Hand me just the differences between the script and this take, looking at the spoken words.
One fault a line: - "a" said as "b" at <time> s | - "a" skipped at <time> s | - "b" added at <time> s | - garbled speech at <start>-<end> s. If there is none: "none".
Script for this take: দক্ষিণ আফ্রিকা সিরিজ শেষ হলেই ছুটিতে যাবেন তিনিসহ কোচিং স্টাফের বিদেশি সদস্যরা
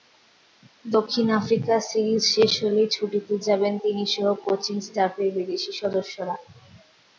none